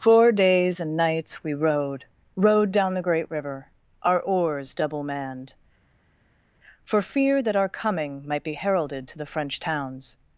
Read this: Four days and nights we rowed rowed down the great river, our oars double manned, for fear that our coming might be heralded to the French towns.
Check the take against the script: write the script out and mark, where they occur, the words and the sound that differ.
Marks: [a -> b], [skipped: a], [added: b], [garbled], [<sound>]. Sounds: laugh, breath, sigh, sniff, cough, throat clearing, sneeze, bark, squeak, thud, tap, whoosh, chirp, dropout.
Four days and nights we rowed rowed down the great river, our oars double manned, for fear that our coming might be heralded to the French towns.